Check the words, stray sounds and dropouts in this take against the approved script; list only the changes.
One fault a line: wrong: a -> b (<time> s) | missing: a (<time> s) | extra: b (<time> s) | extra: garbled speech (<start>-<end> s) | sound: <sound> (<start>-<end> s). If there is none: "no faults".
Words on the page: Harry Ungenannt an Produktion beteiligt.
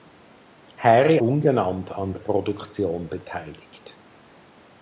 no faults